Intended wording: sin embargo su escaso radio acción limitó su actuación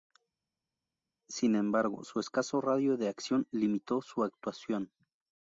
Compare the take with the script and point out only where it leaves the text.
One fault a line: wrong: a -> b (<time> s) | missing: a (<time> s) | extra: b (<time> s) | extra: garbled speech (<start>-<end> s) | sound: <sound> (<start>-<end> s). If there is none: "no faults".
extra: de (3.0 s)